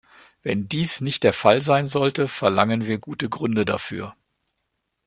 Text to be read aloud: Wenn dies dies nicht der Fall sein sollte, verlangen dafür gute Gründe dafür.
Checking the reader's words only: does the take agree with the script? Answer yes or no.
no